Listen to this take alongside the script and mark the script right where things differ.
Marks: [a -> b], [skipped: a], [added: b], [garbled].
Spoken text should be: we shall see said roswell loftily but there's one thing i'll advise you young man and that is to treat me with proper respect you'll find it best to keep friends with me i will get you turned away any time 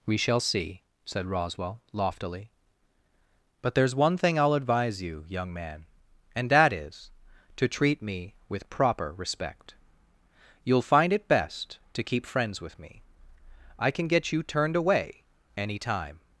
we shall see said roswell loftily but there's one thing i'll advise you young man and that is to treat me with proper respect you'll find it best to keep friends with me i [will -> can] get you turned away any time